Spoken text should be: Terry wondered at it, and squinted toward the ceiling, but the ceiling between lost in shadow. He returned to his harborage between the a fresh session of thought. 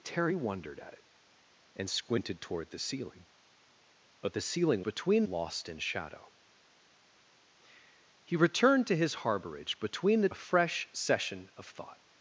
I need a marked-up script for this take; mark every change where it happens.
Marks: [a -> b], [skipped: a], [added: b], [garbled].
Terry wondered at it, and squinted toward the ceiling, but the ceiling between lost in shadow. He returned to his harborage between the a fresh session of thought.